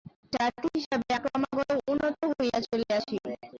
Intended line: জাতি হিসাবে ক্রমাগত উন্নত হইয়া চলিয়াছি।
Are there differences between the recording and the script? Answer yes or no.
no